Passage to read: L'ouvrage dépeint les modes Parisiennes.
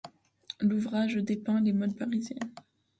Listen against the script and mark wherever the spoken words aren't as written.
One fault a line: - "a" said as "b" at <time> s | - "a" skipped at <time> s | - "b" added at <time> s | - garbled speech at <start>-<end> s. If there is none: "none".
none